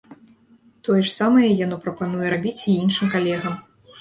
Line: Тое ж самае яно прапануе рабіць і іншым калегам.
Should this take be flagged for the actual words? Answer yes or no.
no